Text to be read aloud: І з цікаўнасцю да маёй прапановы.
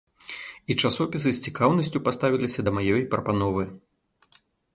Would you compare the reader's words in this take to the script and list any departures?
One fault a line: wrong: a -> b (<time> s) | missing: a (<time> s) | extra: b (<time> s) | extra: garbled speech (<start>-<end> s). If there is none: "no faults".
extra: часопісы (0.9 s)
extra: паставіліся (2.1 s)